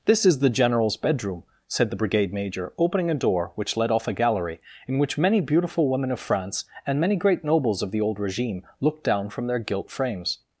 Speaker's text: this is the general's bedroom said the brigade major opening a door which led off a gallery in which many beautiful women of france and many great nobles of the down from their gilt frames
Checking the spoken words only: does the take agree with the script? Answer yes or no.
no